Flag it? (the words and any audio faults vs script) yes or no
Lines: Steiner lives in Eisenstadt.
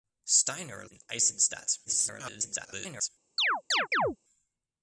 yes